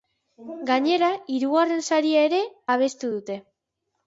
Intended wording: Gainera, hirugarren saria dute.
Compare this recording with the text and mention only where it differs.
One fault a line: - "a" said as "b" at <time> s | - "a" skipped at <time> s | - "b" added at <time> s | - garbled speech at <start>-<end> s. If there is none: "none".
- "ere abestu" added at 2.3 s